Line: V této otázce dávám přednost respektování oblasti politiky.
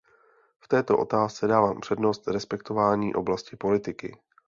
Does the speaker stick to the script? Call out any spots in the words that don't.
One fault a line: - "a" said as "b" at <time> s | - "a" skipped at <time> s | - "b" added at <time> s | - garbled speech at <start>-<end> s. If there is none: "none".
none